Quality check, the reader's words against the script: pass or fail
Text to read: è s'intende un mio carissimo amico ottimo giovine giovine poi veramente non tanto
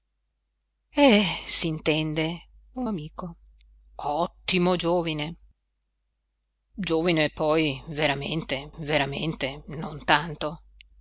fail